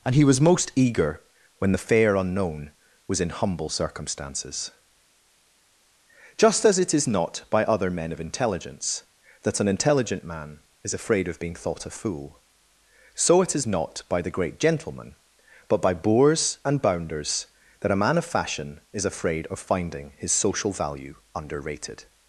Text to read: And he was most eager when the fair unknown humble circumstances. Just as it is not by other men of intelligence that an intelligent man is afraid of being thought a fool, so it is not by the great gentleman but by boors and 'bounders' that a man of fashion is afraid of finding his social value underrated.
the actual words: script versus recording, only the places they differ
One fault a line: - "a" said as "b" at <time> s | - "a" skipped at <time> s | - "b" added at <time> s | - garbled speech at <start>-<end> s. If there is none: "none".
- "was in" added at 3.1 s